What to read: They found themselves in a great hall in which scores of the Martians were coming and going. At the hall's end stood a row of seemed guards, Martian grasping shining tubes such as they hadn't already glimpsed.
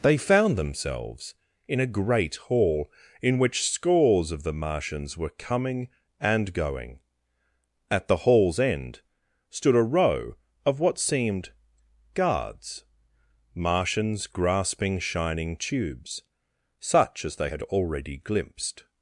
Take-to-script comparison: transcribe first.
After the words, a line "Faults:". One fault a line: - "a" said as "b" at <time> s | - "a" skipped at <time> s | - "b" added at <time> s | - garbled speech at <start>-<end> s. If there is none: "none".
They found themselves in a great hall in which scores of the Martians were coming and going. At the hall's end stood a row of what seemed guards, Martians grasping shining tubes such as they had already glimpsed.
Faults:
- "what" added at 10.8 s
- "Martian" said as "Martians" at 13.5 s
- "hadn't" said as "had" at 17.5 s